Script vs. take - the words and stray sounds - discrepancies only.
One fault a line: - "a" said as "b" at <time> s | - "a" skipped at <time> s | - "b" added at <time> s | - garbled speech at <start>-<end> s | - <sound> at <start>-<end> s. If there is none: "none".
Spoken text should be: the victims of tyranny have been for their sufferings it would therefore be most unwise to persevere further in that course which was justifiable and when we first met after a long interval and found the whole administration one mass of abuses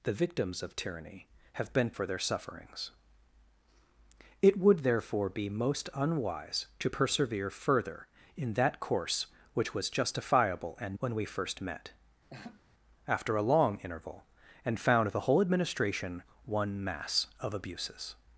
- laugh at 12.3-12.6 s